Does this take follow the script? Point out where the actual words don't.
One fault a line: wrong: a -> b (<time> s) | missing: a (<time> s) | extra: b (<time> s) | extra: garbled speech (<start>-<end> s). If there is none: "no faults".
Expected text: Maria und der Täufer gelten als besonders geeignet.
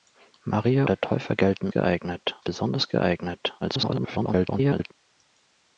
missing: und (0.8 s)
wrong: als -> geeignet (1.7 s)
extra: garbled speech (3.6-4.9 s)